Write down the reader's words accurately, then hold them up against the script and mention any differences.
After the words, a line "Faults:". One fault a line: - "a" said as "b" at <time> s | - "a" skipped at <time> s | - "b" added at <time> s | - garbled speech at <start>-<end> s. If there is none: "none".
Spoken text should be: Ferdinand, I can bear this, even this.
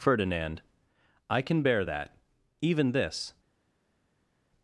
Ferdinand, I can bear that, even this.
Faults:
- "this" said as "that" at 1.8 s